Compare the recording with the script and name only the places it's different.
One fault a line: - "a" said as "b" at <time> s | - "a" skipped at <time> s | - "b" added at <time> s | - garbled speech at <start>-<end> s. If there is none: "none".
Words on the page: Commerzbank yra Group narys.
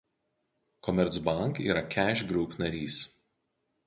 - "Cash" added at 1.9 s